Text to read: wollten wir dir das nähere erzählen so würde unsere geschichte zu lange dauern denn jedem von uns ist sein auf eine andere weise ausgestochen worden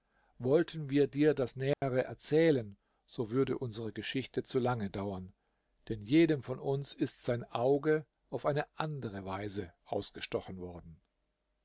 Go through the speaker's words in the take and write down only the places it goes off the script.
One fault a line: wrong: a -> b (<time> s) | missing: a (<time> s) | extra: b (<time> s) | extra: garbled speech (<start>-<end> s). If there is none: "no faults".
extra: auge (7.4 s)